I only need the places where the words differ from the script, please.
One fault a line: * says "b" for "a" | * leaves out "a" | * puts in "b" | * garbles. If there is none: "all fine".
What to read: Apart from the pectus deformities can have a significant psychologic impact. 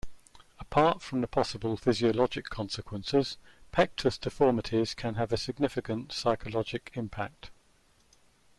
* puts in "possible physiologic consequences"